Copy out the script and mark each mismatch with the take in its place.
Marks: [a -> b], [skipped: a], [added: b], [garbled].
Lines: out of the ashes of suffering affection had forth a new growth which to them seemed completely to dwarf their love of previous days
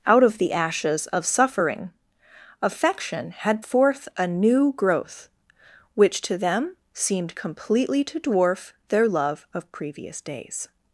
out of the ashes of suffering affection had forth a new growth which to them seemed completely to dwarf their love of previous days